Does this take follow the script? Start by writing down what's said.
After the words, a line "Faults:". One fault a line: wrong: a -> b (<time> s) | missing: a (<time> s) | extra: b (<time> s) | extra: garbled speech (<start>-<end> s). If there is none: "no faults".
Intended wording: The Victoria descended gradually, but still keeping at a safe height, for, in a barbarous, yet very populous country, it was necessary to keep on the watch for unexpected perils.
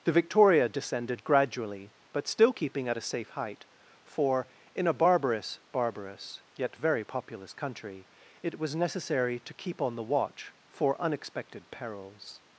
The Victoria descended gradually, but still keeping at a safe height, for, in a barbarous barbarous, yet very populous country, it was necessary to keep on the watch for unexpected perils.
Faults:
extra: barbarous (5.7 s)